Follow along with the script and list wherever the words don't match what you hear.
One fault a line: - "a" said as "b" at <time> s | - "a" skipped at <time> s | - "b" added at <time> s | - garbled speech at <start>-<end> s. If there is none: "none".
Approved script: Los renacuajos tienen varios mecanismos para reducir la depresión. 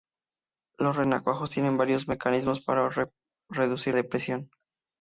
- "la" skipped at 4.0 s